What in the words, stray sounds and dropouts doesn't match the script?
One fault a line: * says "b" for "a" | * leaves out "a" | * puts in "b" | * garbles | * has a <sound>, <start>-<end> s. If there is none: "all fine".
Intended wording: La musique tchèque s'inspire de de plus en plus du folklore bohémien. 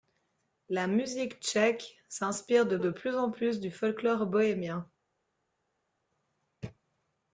all fine